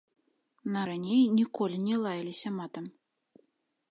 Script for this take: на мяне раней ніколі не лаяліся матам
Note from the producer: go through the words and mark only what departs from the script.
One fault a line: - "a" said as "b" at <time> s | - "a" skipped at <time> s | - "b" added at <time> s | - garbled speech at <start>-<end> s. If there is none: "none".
- "мяне" skipped at 0.8 s